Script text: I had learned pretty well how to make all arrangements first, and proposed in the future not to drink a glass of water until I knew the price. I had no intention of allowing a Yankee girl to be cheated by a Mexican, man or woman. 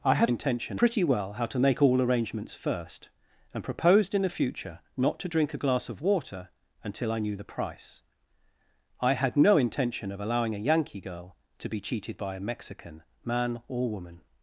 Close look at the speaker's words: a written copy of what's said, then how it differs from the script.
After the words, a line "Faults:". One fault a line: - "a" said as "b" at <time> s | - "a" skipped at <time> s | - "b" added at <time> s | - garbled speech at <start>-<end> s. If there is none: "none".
I had intention pretty well how to make all arrangements first, and proposed in the future not to drink a glass of water until I knew the price. I had no intention of allowing a Yankee girl to be cheated by a Mexican, man or woman.
Faults:
- "learned" said as "intention" at 0.2 s